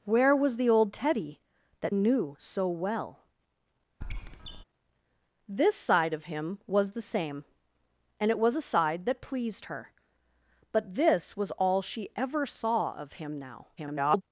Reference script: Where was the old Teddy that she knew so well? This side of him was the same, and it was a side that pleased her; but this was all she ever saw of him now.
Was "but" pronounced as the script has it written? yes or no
yes